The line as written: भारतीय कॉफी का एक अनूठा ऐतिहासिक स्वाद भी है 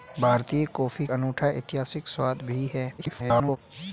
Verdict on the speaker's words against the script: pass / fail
fail